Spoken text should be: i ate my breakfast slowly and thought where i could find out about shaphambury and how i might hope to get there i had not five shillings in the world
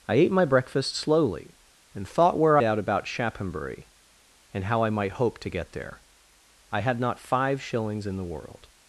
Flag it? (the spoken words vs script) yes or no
yes